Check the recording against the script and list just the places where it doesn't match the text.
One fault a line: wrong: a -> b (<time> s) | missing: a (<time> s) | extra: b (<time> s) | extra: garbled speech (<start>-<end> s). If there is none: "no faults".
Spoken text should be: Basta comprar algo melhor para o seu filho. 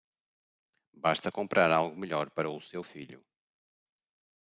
no faults